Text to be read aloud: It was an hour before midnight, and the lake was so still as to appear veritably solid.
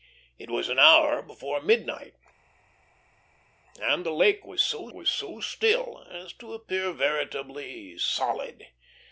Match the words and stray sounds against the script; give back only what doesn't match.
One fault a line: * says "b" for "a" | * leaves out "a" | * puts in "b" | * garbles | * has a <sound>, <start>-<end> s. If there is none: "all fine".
* puts in "was so"